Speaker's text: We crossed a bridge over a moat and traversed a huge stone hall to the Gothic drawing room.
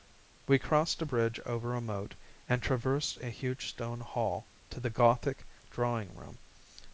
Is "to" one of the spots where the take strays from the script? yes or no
no